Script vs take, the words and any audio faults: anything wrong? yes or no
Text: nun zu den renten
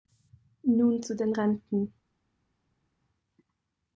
no